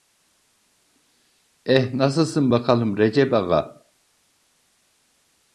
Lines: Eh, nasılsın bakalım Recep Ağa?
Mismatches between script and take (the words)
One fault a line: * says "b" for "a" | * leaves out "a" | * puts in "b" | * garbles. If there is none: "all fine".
all fine